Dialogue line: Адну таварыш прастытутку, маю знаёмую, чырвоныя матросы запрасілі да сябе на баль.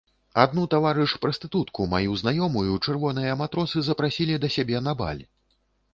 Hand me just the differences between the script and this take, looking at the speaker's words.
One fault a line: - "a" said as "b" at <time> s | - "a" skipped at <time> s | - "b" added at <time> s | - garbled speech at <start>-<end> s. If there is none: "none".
none